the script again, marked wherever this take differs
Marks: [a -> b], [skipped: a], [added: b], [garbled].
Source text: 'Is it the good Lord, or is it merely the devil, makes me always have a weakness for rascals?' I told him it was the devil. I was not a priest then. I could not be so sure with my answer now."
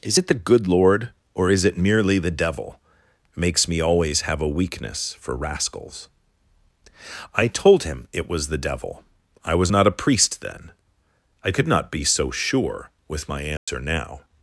'Is it the good Lord, or is it merely the devil, makes me always have a weakness for rascals?' I told him it was the devil. I was not a priest then. I could not be so sure with my answer now."